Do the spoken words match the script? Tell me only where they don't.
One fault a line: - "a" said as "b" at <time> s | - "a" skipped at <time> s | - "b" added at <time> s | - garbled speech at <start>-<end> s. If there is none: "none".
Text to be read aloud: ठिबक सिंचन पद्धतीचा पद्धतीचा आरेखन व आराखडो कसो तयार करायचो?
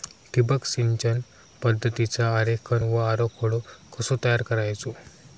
- "पद्धतीचा" skipped at 2.3 s